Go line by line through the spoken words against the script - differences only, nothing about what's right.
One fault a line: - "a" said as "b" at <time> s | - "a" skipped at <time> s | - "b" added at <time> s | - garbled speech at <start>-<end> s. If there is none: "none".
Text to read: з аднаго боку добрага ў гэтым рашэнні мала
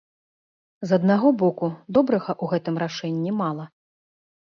none